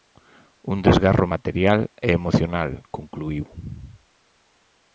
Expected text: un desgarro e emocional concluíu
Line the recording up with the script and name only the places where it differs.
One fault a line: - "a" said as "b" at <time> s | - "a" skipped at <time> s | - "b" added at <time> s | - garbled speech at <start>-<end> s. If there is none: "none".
- "material" added at 1.3 s